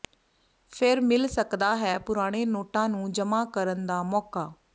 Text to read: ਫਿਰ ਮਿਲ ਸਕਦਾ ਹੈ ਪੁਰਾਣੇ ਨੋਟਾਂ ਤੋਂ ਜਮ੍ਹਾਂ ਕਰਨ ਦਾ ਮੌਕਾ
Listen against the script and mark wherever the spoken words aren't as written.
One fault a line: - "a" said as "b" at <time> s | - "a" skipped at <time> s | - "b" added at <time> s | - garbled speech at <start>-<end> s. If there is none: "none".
- "ਤੋਂ" said as "ਨੂੰ" at 2.9 s